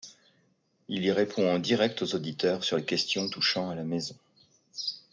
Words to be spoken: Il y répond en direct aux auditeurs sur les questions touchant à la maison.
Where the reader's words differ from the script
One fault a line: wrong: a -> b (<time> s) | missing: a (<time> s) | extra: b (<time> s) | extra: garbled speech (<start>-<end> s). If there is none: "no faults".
no faults